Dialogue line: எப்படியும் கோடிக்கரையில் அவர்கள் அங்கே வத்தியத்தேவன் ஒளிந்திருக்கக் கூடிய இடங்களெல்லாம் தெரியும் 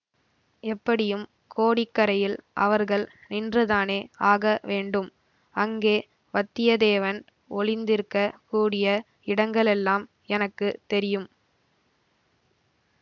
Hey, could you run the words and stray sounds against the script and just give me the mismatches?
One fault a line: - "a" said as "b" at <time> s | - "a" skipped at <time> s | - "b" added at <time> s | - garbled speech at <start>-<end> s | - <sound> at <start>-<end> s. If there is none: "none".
- "நின்றுதானே ஆக வேண்டும்" added at 3.3 s
- "எனக்கு" added at 10.3 s